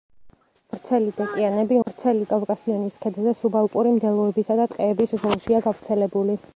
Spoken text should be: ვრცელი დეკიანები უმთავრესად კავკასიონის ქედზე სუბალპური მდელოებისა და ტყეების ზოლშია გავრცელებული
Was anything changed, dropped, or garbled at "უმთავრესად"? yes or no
yes